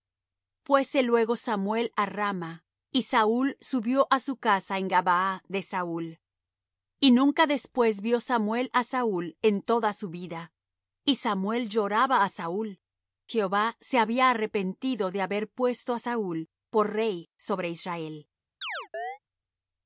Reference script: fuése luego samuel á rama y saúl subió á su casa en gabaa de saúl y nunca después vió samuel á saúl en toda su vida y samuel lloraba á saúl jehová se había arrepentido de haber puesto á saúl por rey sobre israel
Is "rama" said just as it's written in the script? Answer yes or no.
yes